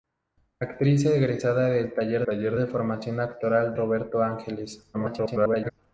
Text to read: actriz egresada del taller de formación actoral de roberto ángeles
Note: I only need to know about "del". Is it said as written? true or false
true